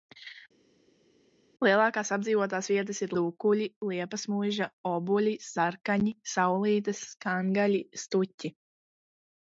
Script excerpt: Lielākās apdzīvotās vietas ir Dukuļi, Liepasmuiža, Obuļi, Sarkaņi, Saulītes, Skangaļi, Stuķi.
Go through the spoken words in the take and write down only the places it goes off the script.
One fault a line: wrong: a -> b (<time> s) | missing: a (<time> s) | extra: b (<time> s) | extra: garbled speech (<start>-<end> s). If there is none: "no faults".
no faults